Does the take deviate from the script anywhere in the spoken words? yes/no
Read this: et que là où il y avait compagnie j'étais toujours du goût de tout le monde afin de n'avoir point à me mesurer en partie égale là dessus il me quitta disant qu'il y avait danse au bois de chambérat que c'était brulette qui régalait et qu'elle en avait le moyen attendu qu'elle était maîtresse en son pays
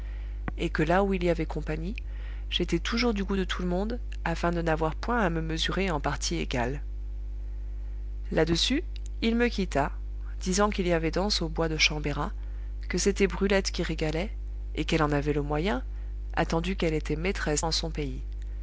no